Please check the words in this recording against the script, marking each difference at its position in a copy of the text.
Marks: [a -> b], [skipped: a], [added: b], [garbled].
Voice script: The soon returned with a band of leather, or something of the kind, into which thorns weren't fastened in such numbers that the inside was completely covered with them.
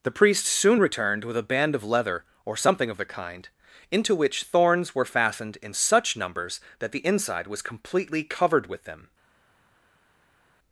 The [added: priest] soon returned with a band of leather, or something of the kind, into which thorns [weren't -> were] fastened in such numbers that the inside was completely covered with them.